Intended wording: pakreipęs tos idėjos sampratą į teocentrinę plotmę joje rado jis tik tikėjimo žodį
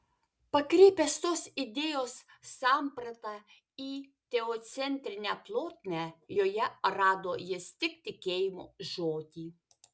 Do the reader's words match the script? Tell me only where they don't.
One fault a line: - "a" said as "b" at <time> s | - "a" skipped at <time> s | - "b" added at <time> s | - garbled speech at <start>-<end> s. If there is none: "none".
none